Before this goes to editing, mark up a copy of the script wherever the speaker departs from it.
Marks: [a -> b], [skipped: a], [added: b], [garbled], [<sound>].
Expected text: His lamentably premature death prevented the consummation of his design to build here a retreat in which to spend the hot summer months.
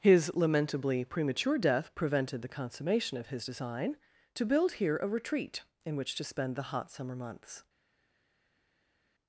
His lamentably premature death prevented the consummation of his design to build here a retreat in which to spend the hot summer months.